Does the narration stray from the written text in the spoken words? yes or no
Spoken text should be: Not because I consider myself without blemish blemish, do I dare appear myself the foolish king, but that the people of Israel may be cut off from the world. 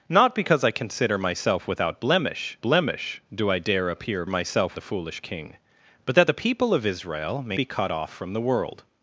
no